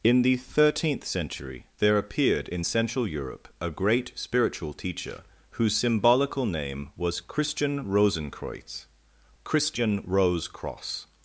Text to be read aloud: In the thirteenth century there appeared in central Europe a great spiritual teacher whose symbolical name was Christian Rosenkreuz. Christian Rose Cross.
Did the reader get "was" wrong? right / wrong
right